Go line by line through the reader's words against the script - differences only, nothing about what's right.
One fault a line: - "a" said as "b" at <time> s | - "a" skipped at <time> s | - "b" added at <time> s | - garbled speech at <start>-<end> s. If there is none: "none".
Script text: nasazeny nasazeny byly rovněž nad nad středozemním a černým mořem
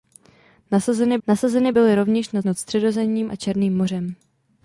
none